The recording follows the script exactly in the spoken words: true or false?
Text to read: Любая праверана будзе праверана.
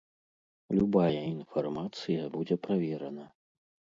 false